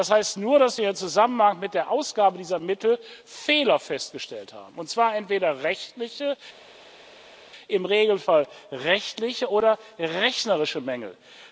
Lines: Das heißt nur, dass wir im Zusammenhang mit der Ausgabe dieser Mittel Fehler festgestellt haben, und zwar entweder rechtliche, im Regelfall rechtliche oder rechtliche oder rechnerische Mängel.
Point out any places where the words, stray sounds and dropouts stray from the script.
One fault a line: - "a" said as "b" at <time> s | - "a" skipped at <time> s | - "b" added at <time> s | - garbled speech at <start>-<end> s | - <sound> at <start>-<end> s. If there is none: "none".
- "rechtliche oder" skipped at 9.8 s